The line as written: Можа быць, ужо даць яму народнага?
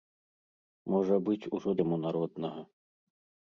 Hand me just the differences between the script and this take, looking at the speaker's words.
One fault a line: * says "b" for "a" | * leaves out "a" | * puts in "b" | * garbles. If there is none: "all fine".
* leaves out "даць"